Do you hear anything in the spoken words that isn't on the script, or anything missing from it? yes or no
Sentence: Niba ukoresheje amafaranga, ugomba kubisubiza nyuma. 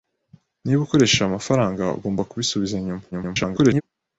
yes